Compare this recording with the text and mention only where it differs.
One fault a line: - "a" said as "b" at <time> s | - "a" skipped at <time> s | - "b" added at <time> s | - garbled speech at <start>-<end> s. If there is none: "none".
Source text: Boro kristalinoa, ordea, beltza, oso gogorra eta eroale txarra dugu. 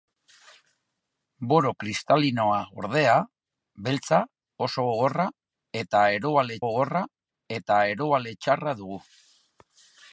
- "gogorra eta eroale" added at 6.7 s